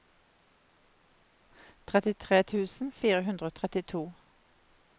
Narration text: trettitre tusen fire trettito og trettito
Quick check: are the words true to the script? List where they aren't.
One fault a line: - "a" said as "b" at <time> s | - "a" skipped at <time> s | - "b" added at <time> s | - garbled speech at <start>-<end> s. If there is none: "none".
- "trettito" said as "hundre" at 3.3 s